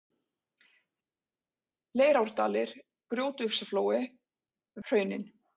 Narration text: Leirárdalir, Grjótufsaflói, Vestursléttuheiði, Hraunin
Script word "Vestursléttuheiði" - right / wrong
wrong